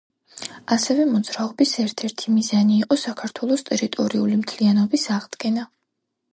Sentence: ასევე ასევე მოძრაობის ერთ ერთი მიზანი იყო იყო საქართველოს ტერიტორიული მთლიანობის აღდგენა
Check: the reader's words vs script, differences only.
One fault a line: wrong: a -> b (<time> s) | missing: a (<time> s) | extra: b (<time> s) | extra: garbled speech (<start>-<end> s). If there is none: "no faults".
missing: ასევე (1.0 s)
missing: იყო (3.0 s)